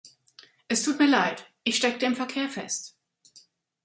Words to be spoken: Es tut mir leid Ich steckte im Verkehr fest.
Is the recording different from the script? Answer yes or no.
no